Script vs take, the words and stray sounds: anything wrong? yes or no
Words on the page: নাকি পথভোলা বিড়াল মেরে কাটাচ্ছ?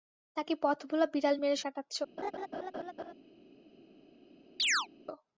yes